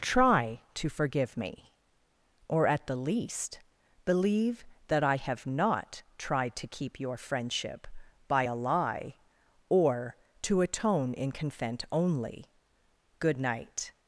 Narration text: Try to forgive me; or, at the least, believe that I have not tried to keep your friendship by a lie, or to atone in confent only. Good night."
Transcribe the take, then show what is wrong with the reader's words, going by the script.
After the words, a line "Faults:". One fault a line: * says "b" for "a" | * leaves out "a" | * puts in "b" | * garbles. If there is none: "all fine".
Try to forgive me; or, at the least, believe that I have not tried to keep your friendship by a lie, or to atone in confent only. Good night."
Faults:
all fine